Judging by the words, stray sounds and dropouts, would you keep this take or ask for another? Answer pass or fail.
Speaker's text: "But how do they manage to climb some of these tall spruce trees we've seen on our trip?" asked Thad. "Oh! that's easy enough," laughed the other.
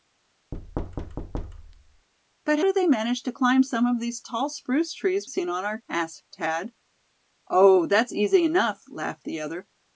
fail